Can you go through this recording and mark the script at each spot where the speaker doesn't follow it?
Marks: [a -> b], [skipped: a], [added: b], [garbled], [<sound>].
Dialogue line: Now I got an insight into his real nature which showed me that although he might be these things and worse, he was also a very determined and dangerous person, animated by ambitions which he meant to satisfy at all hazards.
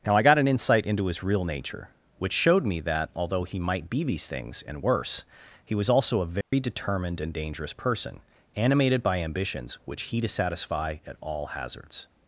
Now I got an insight into his real nature which showed me that although he might be these things and worse, he was also a very [dropout] determined and dangerous person, animated by ambitions which he [skipped: meant] to satisfy at all hazards.